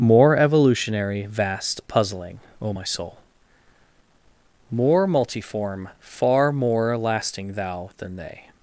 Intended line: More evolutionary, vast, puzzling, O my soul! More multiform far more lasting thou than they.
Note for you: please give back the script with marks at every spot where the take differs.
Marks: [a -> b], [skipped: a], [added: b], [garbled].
More evolutionary, vast, puzzling, O my soul! More multiform far more lasting thou than they.